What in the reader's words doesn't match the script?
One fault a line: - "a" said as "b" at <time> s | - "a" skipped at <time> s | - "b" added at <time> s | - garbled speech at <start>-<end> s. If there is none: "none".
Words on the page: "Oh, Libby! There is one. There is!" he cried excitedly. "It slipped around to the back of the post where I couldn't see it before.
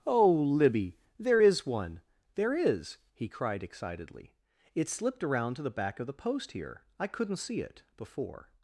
- "where" said as "here" at 6.5 s